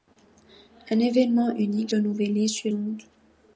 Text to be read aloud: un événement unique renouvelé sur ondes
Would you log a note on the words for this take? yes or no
no